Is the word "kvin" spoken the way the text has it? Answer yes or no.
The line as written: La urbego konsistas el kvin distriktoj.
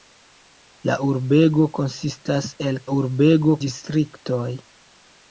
no